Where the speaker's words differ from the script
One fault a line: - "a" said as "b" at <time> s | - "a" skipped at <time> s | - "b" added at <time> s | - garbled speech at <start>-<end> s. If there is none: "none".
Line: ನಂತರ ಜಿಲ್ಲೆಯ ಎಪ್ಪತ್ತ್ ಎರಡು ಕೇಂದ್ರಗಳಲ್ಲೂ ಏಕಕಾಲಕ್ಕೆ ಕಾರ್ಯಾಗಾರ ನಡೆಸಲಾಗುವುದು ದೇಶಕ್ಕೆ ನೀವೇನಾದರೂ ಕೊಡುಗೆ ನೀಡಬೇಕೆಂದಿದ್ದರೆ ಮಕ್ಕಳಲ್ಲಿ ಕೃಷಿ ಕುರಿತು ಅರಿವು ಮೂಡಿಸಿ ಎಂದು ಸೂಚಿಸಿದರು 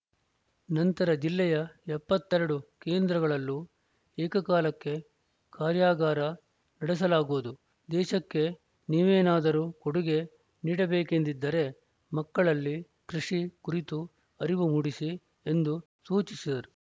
none